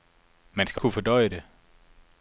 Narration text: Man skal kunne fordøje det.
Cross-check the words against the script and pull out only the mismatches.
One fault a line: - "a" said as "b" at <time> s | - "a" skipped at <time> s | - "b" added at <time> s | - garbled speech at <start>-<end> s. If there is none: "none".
none